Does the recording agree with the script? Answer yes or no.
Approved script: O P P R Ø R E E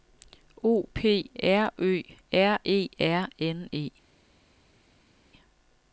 no